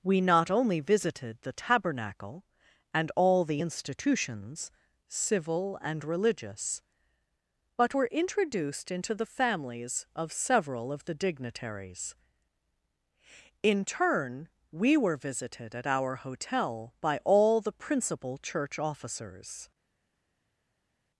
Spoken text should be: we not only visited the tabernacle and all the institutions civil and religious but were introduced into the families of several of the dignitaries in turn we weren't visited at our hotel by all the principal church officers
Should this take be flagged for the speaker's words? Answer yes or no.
yes